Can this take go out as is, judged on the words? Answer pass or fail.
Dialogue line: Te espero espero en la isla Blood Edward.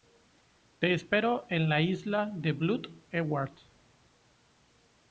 fail